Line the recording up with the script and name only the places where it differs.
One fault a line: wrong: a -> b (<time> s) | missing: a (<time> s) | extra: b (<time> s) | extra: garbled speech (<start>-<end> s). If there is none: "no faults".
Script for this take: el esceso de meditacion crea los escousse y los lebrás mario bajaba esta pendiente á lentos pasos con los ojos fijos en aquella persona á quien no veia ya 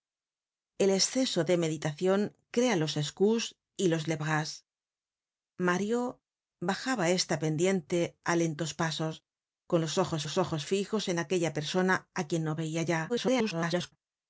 extra: los ojos (10.2 s)
extra: garbled speech (13.1-13.9 s)